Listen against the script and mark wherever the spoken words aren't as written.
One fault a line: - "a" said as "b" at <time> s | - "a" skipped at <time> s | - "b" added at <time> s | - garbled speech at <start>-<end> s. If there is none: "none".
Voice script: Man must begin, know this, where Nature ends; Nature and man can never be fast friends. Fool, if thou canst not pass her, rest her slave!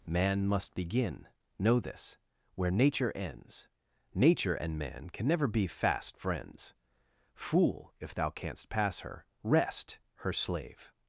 - "not" skipped at 8.7 s